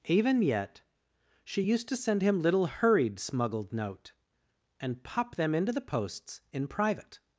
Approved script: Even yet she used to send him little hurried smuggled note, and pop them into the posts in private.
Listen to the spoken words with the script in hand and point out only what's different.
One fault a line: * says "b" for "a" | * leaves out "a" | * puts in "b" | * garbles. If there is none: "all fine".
all fine